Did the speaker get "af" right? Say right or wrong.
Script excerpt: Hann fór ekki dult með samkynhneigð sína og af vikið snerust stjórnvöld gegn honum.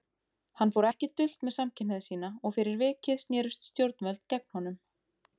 wrong